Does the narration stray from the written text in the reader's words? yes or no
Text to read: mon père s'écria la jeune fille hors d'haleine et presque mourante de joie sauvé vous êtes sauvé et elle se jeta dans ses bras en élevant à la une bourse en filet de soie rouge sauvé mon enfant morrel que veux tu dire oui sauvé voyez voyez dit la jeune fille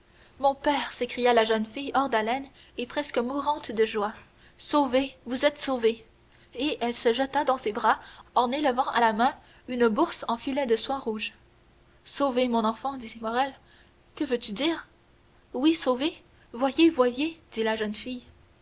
yes